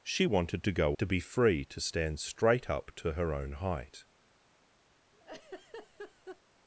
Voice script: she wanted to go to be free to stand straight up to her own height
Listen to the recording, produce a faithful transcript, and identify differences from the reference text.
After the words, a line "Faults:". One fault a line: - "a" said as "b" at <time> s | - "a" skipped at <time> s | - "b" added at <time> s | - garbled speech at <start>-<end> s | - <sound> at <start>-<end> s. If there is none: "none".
she wanted to go to be free to stand straight up to her own height
Faults:
- laugh at 5.1-6.4 s